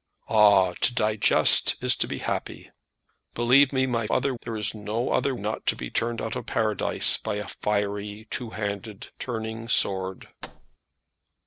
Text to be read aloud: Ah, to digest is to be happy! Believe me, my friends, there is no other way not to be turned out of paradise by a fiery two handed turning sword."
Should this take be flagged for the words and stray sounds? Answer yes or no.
yes